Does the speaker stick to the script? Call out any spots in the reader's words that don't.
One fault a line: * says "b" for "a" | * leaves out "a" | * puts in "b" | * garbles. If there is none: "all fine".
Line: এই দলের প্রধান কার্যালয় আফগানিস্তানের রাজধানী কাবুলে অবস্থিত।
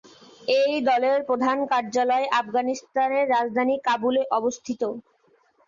all fine